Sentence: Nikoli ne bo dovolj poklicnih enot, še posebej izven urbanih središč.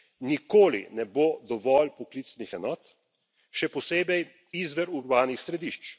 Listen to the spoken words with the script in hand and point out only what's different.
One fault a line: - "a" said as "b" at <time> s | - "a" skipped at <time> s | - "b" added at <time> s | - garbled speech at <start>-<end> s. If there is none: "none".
none